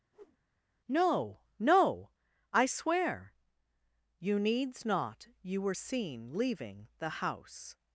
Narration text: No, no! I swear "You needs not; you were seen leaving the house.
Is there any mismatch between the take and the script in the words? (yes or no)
no